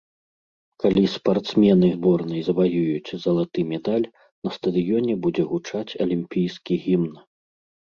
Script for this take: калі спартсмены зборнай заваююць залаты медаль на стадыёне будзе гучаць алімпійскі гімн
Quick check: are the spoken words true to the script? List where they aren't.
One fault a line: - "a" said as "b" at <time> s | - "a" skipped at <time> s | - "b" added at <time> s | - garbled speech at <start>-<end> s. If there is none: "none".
none